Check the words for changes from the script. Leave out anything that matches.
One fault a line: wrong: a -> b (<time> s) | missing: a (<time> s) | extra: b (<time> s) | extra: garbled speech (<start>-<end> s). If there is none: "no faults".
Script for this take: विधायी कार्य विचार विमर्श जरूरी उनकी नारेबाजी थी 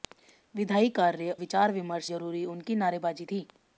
no faults